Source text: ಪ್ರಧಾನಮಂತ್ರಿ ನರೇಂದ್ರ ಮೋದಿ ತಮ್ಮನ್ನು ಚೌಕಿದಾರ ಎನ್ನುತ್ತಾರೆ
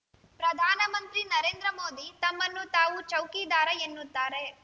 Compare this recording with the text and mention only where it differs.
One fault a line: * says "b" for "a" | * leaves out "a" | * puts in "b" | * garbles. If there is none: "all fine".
* puts in "ತಾವು"